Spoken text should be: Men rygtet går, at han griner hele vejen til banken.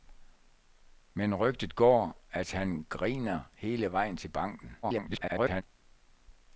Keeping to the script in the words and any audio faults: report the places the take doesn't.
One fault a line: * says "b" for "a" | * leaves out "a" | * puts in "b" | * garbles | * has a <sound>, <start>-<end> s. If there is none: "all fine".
* garbles